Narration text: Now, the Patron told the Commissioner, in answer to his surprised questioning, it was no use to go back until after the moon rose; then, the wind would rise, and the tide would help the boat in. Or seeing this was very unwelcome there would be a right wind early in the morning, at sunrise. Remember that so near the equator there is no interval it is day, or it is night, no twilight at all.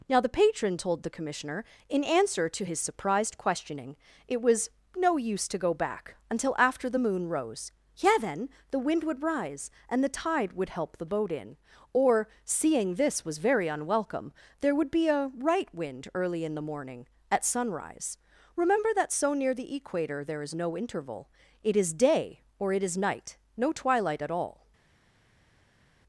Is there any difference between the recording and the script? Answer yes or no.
yes